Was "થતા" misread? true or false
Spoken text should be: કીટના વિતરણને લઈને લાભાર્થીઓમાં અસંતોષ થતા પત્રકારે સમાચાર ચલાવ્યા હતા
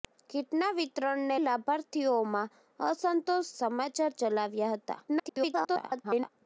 true